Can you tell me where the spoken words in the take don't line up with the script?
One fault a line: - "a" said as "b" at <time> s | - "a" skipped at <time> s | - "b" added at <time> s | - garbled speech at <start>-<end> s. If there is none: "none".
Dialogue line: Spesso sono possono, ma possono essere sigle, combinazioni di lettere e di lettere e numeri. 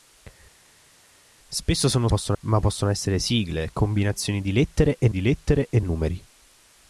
none